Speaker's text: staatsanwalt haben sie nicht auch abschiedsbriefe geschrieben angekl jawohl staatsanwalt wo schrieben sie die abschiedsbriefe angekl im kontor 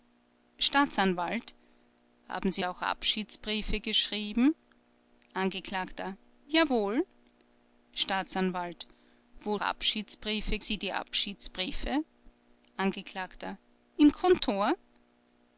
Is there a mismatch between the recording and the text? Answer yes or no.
yes